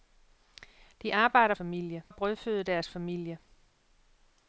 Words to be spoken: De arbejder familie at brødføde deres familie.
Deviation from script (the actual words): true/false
false